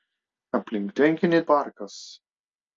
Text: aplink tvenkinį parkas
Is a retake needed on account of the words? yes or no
no